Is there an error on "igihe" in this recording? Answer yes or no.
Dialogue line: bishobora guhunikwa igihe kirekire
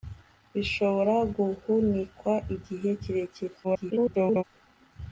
no